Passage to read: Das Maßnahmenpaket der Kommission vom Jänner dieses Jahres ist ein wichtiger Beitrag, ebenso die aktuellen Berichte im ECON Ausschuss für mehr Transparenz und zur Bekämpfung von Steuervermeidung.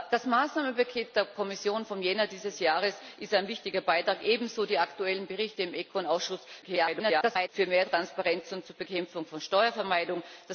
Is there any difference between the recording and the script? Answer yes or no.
yes